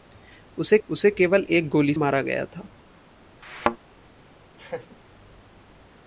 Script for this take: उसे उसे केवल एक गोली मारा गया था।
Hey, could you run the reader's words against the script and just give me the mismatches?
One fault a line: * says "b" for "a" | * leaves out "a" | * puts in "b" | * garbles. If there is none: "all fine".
all fine